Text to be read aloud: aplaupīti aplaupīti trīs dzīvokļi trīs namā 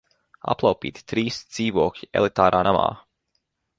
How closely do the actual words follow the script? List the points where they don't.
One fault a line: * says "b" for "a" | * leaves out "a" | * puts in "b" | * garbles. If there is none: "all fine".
* leaves out "aplaupīti"
* says "elitārā" for "trīs"